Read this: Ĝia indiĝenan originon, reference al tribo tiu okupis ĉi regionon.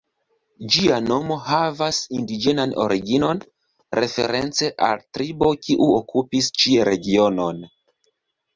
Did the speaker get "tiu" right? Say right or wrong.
wrong